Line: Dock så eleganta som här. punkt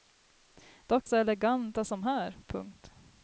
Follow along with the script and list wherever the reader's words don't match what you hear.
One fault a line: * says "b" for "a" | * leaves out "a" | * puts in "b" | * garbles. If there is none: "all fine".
all fine